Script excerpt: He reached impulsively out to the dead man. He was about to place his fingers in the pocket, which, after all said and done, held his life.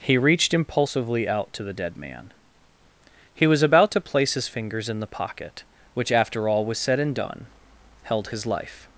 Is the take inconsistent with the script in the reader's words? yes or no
yes